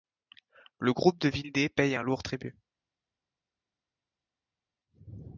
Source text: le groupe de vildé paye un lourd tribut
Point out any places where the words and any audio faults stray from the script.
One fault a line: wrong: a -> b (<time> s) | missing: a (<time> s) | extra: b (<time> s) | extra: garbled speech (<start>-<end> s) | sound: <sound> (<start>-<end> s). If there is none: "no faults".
no faults